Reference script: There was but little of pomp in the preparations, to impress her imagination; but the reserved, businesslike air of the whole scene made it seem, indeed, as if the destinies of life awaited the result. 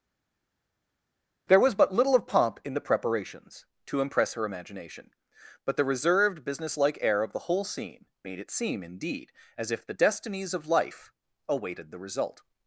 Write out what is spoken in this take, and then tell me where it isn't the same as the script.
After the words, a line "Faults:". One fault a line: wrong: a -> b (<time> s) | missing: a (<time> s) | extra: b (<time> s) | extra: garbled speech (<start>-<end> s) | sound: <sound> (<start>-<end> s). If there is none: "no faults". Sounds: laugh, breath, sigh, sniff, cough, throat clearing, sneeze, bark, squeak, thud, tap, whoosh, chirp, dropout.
There was but little of pomp in the preparations, to impress her imagination; but the reserved, businesslike air of the whole scene made it seem, indeed, as if the destinies of life awaited the result.
Faults:
no faults